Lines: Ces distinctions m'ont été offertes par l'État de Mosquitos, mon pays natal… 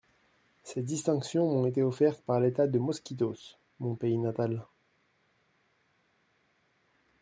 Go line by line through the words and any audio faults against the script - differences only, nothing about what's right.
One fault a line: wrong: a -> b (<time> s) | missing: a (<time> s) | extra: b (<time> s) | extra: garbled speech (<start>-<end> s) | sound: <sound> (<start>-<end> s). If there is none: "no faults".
no faults